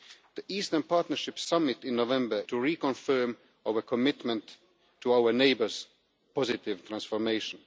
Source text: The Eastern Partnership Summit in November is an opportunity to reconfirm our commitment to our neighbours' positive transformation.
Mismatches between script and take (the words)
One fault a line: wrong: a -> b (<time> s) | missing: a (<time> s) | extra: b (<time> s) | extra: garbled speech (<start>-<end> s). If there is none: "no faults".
missing: is an opportunity (2.4 s)